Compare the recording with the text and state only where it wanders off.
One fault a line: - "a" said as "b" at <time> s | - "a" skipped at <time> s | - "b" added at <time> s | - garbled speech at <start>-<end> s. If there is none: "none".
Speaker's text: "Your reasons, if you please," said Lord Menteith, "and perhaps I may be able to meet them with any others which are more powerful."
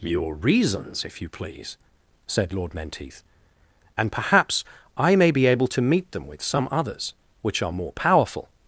- "any" said as "some" at 6.4 s